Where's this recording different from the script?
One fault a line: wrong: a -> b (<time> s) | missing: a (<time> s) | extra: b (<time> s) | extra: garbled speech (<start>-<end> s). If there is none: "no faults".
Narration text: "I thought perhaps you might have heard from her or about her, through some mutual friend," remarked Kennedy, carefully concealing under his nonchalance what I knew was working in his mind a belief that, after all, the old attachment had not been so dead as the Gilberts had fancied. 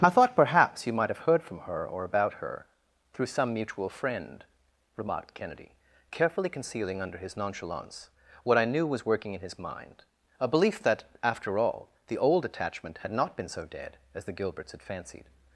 no faults